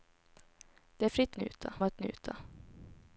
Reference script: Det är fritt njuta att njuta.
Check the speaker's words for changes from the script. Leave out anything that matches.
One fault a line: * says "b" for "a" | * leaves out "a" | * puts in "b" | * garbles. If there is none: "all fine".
all fine